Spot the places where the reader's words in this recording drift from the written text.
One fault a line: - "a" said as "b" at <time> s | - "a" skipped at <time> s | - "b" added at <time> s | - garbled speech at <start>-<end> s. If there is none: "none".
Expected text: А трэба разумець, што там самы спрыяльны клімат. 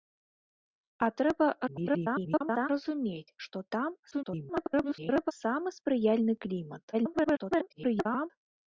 - garbled speech at 1.7-2.7 s
- garbled speech at 4.1-5.3 s
- garbled speech at 6.9-8.3 s